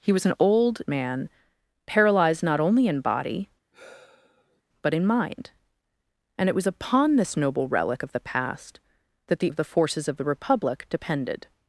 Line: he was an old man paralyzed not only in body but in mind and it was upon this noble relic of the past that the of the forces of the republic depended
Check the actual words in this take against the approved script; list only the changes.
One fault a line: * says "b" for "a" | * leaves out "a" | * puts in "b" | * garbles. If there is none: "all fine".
all fine